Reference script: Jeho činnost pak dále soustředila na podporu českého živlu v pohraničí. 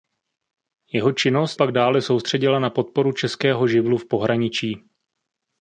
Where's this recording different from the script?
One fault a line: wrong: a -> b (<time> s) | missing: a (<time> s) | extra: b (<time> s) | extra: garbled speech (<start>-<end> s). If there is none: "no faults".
no faults